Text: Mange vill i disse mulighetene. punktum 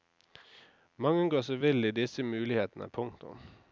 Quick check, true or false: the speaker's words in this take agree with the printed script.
false